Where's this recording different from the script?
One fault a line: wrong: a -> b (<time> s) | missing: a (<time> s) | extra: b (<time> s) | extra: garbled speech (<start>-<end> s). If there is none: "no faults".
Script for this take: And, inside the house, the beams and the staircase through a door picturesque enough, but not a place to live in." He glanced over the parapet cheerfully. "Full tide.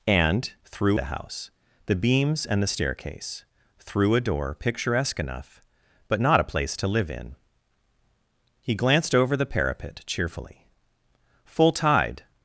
wrong: inside -> through (0.7 s)